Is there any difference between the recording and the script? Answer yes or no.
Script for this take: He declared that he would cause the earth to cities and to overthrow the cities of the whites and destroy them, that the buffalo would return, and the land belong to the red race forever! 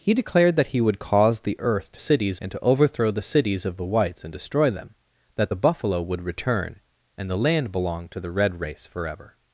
no